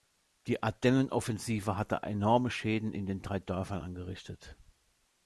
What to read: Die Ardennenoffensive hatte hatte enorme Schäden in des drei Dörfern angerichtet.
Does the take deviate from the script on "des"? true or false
true